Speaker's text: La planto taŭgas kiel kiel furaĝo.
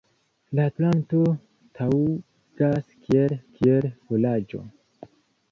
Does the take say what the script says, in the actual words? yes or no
yes